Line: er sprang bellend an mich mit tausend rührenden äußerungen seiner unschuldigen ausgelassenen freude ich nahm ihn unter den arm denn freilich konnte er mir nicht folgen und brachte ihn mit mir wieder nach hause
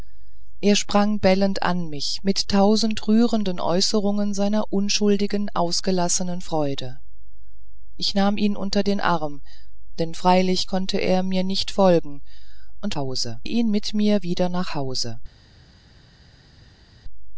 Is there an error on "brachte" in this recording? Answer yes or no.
yes